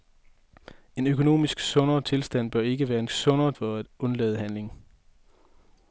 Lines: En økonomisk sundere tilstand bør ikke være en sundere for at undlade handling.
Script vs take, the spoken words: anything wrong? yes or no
no